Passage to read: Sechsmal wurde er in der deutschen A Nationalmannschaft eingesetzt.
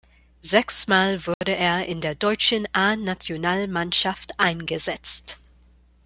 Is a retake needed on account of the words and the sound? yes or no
yes